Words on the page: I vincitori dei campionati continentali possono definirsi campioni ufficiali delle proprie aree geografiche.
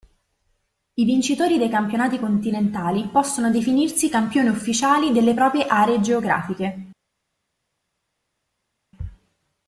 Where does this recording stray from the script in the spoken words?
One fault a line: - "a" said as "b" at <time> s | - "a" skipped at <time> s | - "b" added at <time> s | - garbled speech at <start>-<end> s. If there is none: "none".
none